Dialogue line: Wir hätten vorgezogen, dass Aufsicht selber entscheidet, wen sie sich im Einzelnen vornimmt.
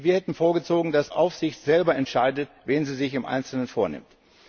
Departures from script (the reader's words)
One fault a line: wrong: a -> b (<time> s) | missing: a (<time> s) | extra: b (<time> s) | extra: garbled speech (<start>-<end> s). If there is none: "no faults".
no faults